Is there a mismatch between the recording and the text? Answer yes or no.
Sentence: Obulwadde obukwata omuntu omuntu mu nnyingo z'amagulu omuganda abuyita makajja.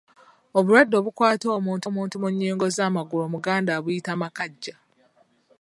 no